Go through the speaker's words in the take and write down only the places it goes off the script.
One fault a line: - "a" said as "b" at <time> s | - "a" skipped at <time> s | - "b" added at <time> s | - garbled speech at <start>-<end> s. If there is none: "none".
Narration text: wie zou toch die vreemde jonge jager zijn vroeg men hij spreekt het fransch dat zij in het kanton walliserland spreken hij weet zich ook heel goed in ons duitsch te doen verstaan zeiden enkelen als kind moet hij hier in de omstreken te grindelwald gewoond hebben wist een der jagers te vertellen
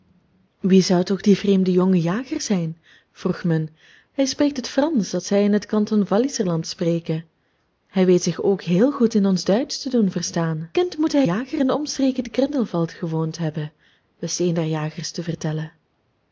- "zeiden enkelen als" skipped at 10.7 s
- "hier" said as "jager" at 11.2 s